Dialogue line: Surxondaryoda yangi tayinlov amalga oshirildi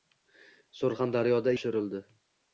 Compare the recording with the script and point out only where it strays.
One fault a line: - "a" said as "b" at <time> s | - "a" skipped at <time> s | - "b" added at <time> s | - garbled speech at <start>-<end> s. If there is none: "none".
- "yangi tayinlov amalga" skipped at 1.5 s